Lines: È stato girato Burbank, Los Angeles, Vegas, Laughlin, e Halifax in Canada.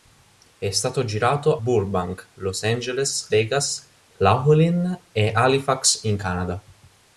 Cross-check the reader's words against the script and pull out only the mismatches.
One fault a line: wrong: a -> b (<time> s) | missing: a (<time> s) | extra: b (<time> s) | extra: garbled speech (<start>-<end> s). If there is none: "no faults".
no faults